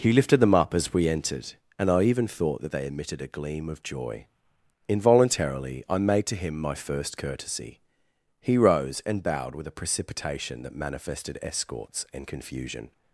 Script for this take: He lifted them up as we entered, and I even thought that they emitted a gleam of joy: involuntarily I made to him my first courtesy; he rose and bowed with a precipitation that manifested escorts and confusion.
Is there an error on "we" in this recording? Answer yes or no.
no